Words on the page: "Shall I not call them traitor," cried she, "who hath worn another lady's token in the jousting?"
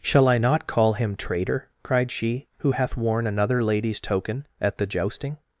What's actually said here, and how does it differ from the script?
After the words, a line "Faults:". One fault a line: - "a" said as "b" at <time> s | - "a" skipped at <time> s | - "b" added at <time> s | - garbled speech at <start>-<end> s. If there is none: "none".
"Shall I not call him traitor," cried she, "who hath worn another lady's token at the jousting?"
Faults:
- "them" said as "him" at 0.9 s
- "in" said as "at" at 4.6 s